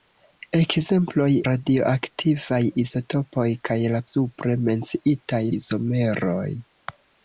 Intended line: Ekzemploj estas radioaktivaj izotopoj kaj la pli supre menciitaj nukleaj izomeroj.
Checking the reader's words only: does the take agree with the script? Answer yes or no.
no